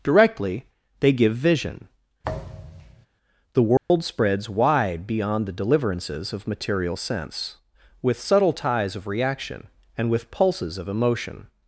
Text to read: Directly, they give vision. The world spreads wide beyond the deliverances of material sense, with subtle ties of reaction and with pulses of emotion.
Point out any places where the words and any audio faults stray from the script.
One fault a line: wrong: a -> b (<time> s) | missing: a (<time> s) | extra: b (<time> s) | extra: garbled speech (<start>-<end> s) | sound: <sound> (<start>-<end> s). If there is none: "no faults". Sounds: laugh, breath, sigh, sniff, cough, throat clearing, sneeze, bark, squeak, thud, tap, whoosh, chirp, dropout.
sound: thud (2.2-3.1 s)
sound: dropout (3.8-3.9 s)